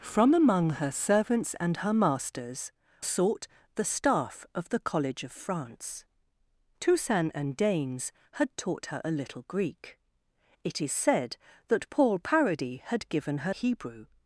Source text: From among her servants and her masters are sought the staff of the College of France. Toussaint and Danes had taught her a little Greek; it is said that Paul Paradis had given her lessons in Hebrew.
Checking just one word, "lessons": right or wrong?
wrong